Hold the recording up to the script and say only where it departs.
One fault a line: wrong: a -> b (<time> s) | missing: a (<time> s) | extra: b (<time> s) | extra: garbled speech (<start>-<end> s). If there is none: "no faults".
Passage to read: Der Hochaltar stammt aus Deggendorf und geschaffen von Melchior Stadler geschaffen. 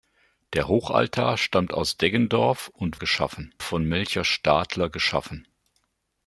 no faults